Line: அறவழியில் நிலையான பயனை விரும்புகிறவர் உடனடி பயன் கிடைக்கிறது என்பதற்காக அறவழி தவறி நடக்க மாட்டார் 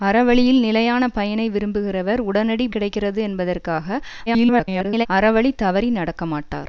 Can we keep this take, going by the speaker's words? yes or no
no